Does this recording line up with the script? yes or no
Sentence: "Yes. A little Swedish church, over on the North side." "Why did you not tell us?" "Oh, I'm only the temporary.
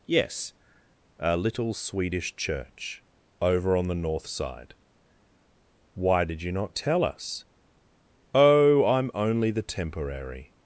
yes